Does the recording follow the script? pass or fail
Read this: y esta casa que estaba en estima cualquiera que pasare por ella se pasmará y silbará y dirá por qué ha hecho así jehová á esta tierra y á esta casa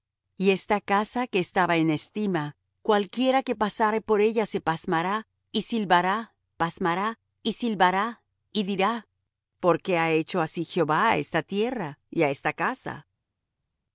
fail